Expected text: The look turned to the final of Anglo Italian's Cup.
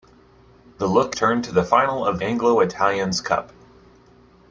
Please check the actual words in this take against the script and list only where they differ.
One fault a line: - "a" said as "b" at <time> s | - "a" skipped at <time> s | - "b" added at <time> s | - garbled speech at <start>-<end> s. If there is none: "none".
none